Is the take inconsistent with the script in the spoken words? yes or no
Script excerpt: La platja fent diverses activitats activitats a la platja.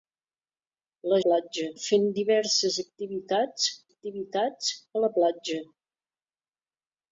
no